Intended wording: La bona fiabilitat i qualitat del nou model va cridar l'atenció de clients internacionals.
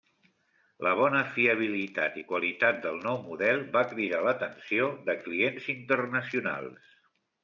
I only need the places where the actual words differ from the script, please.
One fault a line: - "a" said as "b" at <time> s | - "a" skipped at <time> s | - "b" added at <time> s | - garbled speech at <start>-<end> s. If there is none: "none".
none